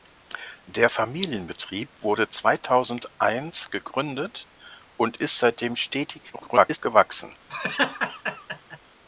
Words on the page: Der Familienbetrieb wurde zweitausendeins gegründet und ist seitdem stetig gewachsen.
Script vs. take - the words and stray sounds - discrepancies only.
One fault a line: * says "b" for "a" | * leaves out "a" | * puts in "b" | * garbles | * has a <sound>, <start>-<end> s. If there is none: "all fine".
* garbles
* has a laugh, 7.5-8.8 s